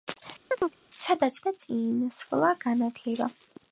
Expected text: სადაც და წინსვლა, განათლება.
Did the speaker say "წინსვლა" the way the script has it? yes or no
yes